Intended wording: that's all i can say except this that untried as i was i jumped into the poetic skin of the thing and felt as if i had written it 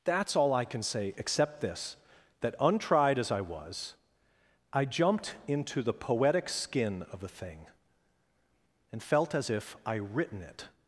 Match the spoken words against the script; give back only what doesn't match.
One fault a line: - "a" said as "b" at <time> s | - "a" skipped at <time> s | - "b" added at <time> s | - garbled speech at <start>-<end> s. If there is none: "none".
- "had" skipped at 9.9 s